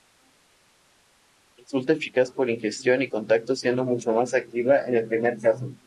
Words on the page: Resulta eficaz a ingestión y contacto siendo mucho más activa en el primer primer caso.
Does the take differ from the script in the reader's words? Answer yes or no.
yes